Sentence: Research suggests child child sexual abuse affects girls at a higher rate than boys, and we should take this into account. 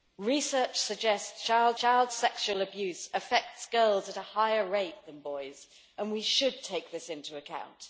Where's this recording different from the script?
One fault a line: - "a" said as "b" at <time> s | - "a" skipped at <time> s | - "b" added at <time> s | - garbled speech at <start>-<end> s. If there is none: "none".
none